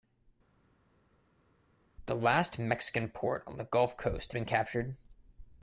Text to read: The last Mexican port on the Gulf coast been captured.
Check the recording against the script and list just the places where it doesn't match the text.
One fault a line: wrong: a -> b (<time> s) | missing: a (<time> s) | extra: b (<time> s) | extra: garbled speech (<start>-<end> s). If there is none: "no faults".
no faults